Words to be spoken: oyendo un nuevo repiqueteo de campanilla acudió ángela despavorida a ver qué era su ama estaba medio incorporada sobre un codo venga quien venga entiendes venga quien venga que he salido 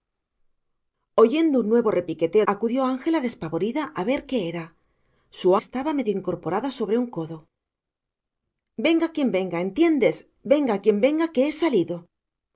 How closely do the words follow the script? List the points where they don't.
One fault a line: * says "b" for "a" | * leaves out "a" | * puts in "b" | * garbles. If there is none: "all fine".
* leaves out "de campanilla"
* leaves out "ama"